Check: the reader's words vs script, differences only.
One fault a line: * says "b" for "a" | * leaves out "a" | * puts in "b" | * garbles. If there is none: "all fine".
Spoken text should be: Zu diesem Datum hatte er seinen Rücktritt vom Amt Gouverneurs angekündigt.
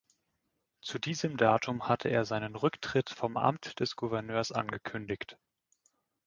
* puts in "des"